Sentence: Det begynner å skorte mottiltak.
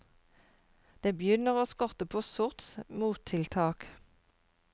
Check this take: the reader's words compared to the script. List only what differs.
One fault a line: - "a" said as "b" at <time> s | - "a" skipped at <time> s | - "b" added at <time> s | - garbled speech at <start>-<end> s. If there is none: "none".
- "på sorts" added at 2.0 s